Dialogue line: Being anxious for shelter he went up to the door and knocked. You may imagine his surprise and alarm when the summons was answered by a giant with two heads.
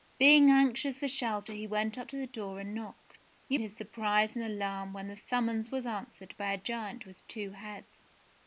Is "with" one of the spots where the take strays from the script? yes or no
no